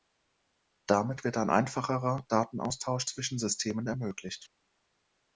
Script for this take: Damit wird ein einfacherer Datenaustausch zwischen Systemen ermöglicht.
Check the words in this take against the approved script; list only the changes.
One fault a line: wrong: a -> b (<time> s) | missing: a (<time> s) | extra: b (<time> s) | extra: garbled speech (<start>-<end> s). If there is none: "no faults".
no faults